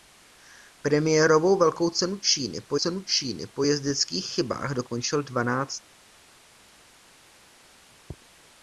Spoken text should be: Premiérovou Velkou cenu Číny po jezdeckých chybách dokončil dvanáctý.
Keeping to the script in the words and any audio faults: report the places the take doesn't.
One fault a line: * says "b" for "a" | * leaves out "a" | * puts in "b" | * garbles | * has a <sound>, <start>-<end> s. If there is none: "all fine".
* puts in "cenu Číny po"